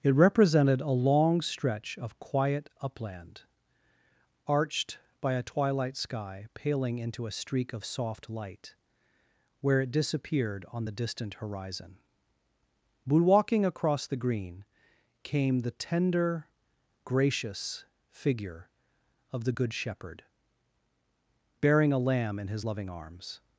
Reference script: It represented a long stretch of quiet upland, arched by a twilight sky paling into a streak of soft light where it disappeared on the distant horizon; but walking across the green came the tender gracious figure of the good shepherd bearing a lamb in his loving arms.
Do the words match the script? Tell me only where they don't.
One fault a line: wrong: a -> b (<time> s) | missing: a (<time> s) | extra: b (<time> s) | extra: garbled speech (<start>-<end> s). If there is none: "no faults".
no faults